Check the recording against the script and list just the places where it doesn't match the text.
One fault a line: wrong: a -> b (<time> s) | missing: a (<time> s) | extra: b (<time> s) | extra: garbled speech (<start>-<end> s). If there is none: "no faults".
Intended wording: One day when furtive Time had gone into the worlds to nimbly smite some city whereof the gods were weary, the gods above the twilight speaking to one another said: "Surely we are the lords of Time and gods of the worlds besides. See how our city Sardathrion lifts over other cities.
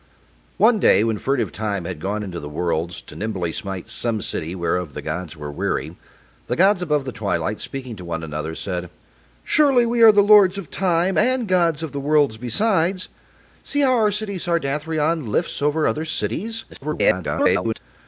extra: garbled speech (16.7-17.8 s)